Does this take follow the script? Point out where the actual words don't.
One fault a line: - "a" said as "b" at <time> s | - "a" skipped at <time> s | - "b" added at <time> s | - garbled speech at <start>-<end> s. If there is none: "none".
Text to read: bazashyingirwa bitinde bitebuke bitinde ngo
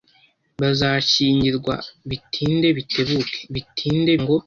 none